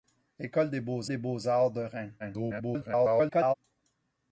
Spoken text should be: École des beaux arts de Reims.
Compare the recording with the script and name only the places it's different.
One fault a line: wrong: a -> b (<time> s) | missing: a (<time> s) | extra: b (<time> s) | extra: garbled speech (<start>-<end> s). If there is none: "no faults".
extra: des beaux (1.1 s)
extra: garbled speech (2.2-3.5 s)